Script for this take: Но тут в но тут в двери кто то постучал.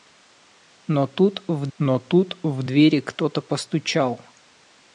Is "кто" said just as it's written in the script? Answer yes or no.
yes